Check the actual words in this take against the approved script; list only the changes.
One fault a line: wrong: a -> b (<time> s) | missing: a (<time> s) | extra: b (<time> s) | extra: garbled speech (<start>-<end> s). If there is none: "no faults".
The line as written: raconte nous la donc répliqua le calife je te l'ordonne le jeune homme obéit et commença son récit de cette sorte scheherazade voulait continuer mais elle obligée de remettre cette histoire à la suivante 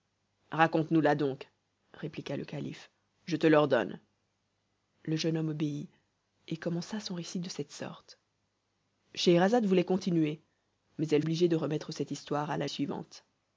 no faults